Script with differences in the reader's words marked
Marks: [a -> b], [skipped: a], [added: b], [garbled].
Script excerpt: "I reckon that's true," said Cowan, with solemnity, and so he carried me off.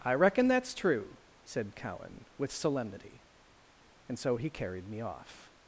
"I reckon that's true," said Cowan, with solemnity, and so he carried me off.